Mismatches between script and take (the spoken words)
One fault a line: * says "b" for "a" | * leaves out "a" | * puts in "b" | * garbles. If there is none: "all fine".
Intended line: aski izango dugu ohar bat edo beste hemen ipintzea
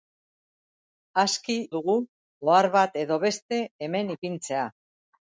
* leaves out "izango"